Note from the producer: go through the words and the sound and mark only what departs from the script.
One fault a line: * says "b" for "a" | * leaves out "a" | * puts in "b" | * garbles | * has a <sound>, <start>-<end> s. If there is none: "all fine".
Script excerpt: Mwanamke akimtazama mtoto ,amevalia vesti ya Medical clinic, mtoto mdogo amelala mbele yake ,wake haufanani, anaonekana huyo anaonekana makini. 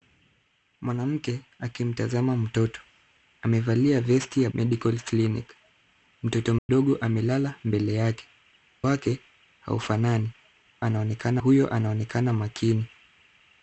* has a dropout, 6.6-6.7 s